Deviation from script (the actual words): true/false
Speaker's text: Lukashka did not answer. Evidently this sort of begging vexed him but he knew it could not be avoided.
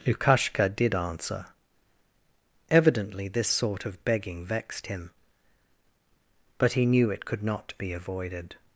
true